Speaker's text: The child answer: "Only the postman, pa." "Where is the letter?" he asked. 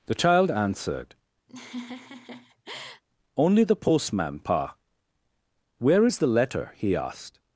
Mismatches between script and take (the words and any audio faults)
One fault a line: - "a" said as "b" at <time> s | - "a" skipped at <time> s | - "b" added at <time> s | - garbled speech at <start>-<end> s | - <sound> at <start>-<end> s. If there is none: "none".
- "answer" said as "answered" at 0.5 s
- laugh at 1.5-3.0 s